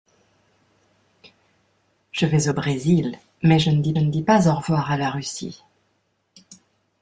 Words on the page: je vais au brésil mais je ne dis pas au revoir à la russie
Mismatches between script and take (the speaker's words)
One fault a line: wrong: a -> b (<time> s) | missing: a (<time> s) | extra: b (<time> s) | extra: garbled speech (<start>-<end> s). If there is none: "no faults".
extra: ne dis (4.0 s)